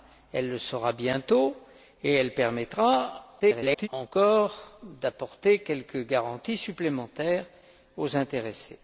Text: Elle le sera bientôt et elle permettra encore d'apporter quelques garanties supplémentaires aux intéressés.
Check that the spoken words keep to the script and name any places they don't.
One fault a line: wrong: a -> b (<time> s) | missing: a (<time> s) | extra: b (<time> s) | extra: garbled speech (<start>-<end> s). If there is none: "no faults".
extra: garbled speech (3.4-3.9 s)